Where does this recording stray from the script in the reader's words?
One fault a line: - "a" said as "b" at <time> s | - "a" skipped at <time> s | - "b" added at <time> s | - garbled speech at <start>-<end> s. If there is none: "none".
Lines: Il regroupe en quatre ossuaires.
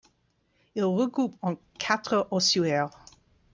none